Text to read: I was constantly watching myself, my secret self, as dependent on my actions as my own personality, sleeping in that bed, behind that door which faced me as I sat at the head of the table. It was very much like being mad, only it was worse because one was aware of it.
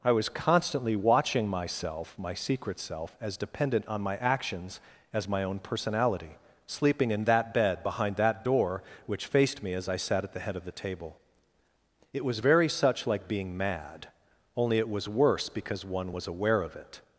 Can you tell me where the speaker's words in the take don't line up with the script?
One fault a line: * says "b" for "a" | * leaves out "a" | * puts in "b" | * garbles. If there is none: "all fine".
* says "such" for "much"